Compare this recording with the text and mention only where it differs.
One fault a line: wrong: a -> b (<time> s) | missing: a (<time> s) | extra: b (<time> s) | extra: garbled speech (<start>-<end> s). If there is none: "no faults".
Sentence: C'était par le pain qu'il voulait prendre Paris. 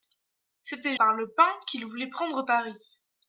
no faults